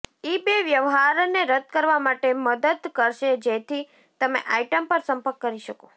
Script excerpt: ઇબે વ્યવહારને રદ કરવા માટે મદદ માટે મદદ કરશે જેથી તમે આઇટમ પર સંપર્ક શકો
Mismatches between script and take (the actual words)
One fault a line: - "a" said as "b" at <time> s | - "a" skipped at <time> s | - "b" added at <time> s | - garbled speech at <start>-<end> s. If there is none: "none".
- "માટે મદદ" skipped at 2.9 s
- "કરી" added at 5.4 s